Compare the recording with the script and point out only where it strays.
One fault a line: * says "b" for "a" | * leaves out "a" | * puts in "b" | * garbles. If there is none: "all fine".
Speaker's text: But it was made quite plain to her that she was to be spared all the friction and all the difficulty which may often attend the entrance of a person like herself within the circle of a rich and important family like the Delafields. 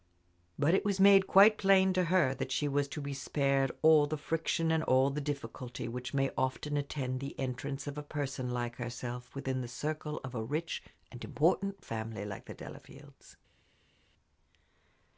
all fine